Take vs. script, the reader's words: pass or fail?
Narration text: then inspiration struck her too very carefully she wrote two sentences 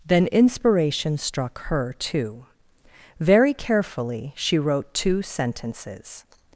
pass